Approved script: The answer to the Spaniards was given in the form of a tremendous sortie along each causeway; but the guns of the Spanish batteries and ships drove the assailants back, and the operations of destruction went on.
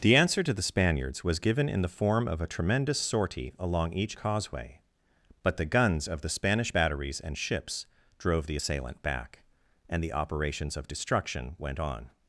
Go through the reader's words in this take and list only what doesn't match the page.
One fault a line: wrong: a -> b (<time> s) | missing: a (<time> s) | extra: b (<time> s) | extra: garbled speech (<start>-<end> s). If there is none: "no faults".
wrong: assailants -> assailant (8.5 s)